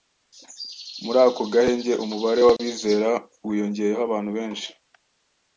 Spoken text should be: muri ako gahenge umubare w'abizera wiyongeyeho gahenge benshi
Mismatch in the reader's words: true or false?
true